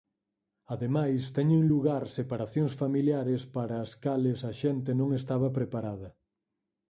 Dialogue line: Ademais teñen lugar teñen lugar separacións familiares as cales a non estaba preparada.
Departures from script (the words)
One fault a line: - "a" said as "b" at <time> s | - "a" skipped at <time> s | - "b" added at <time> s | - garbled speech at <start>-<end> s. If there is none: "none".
- "teñen lugar" skipped at 2.0 s
- "para" added at 3.5 s
- "xente" added at 4.6 s